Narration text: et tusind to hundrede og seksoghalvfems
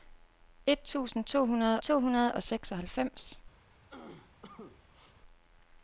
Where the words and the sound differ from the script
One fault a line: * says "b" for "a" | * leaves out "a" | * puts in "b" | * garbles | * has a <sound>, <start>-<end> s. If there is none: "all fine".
* puts in "to hundrede"
* has a cough, 3.9-5.2 s